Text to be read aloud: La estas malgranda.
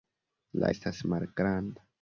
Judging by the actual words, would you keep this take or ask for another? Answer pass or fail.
pass